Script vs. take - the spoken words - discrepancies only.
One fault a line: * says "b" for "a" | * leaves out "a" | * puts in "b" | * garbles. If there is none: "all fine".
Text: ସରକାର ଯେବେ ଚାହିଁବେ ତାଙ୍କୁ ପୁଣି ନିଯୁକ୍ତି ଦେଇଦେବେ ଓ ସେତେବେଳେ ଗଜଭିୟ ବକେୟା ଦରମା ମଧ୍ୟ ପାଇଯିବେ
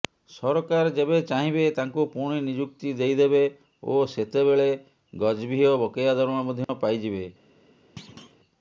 all fine